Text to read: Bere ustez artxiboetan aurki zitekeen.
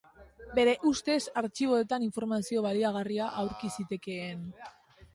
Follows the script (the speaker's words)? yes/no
no